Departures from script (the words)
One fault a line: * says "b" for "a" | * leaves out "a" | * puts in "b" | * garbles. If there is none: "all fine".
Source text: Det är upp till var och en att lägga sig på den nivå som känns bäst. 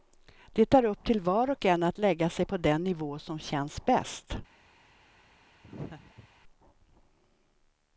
all fine